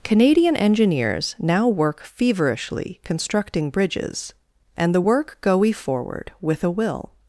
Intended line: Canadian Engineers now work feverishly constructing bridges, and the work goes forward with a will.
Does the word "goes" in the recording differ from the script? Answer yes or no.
yes